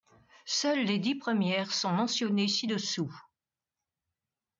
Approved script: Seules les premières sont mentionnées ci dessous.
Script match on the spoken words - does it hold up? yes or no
no